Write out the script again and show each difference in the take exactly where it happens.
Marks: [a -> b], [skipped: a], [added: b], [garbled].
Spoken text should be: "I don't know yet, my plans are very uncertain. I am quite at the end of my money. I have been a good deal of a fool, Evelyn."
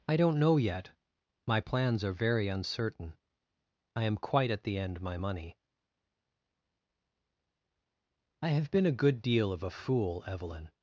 "I don't know yet, my plans are very uncertain. I am quite at the end [skipped: of] my money. I have been a good deal of a fool, Evelyn."